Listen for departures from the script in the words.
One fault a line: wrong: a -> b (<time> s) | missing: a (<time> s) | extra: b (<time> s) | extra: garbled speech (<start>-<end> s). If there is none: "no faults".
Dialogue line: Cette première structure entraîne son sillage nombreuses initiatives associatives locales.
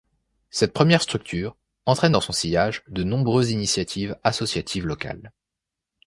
extra: dans (2.1 s)
extra: de (2.9 s)